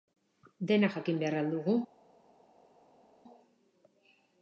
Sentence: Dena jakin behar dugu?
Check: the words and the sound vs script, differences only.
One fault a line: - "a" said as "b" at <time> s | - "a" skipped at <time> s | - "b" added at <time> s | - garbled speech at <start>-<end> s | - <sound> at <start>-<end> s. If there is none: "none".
- "al" added at 1.4 s